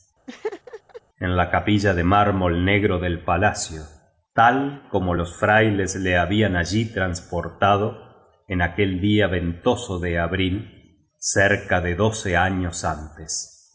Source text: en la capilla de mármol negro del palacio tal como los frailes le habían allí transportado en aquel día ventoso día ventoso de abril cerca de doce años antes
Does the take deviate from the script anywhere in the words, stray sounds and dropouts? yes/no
yes